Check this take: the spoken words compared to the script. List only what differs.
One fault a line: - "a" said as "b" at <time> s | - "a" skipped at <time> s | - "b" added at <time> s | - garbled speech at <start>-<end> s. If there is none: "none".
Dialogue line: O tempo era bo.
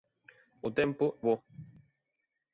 - "era" skipped at 1.0 s